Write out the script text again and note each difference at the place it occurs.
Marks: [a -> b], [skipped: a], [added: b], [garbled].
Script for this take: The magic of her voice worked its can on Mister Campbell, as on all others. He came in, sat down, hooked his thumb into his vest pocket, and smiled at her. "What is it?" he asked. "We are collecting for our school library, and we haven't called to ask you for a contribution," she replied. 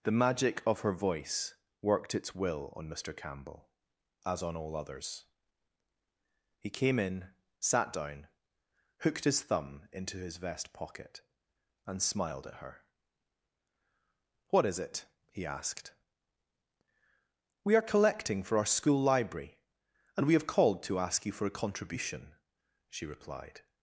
The magic of her voice worked its [can -> will] on Mister Campbell, as on all others. He came in, sat down, hooked his thumb into his vest pocket, and smiled at her. "What is it?" he asked. "We are collecting for our school library, and we [haven't -> have] called to ask you for a contribution," she replied.